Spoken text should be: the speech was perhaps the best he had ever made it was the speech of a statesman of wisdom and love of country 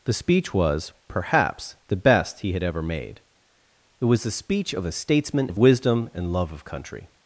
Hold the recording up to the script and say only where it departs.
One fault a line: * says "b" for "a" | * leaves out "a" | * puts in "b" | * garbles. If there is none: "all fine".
all fine